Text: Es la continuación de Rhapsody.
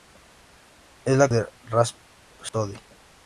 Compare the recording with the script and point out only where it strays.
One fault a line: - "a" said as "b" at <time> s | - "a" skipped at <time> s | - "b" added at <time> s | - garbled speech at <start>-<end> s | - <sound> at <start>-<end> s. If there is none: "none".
- "continuación" skipped at 1.3 s
- dropout at 2.5-2.5 s